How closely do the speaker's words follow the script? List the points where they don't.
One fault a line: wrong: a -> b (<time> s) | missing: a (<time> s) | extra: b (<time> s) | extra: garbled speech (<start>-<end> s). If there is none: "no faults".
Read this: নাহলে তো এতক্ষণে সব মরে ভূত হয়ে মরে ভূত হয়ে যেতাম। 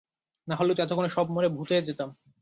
missing: মরে ভূত হয়ে (1.9 s)